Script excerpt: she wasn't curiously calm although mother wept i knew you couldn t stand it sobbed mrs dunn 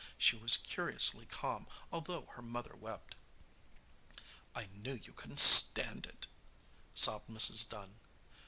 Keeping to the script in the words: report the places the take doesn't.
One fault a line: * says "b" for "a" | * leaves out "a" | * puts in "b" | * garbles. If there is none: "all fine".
* says "was" for "wasn't"
* puts in "her"